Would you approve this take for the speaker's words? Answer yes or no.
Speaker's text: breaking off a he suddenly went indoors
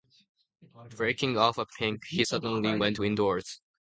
no